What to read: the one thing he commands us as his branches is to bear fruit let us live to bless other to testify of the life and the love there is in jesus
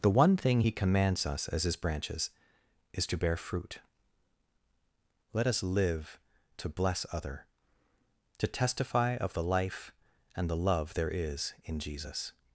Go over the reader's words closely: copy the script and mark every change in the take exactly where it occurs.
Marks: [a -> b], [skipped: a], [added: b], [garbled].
the one thing he commands us as his branches is to bear fruit let us live to bless other to testify of the life and the love there is in jesus